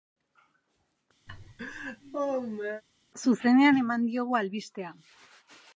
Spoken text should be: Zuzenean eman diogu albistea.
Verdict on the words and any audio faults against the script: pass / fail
fail